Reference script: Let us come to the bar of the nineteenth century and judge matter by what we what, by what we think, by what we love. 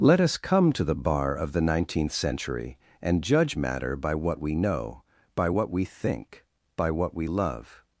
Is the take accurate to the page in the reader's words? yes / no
no